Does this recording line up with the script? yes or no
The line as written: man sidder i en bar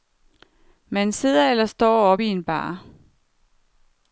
no